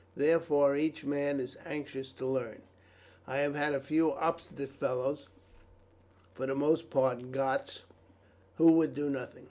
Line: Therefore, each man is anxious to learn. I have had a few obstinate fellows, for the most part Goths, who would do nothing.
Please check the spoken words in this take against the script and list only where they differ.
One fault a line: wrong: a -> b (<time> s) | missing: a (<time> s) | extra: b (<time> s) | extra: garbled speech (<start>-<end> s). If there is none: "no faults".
no faults